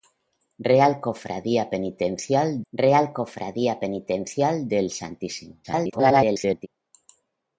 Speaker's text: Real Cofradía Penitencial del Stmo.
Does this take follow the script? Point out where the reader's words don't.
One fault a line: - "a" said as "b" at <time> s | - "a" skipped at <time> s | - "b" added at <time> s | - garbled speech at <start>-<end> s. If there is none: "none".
- "real Cofradía Penitencial" added at 2.7 s
- garbled speech at 5.6-6.7 s